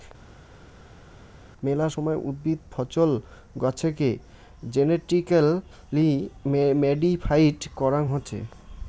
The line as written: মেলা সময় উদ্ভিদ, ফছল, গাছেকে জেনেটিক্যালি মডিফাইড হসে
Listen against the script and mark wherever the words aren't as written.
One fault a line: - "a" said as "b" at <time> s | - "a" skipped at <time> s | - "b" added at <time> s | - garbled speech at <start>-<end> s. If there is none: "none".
- "করাং" added at 7.8 s